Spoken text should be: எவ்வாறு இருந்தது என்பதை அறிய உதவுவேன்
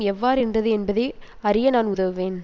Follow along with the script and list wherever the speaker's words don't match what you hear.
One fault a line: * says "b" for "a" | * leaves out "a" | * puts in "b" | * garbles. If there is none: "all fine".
* puts in "நான்"